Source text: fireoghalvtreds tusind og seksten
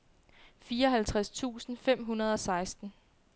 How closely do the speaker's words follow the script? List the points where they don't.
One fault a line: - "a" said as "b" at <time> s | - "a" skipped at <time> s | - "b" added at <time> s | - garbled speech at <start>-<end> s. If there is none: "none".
- "fem hundrede" added at 1.8 s